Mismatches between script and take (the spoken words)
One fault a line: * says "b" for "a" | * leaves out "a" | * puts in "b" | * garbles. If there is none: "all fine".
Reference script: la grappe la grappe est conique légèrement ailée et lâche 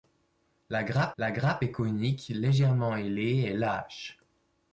all fine